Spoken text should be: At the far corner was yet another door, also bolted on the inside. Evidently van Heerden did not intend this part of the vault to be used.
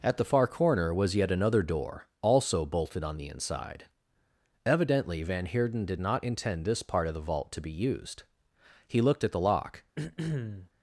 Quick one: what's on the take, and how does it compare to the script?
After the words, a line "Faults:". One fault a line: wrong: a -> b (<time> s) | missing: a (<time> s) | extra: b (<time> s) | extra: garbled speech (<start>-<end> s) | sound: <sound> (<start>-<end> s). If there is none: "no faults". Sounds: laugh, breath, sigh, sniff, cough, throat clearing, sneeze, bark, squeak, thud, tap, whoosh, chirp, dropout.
At the far corner was yet another door, also bolted on the inside. Evidently van Heerden did not intend this part of the vault to be used. He looked at the lock
Faults:
extra: He looked at the lock (8.9 s)
sound: throat clearing (10.0-10.7 s)